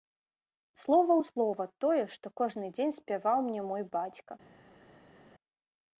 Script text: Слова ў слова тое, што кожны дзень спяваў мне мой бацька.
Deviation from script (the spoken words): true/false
false